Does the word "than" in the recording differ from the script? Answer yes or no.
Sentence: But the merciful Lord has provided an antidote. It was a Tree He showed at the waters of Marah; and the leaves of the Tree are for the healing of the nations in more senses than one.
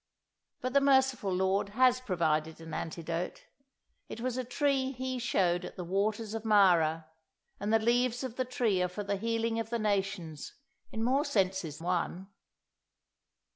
yes